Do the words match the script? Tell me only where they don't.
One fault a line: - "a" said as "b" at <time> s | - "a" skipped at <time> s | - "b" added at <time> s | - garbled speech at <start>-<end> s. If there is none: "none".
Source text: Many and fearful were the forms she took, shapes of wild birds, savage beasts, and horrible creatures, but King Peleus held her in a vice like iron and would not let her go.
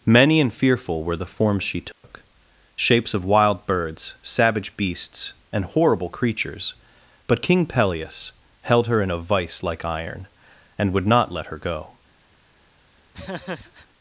none